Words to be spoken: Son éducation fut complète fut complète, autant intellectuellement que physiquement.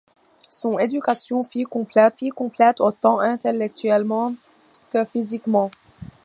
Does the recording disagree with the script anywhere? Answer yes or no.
no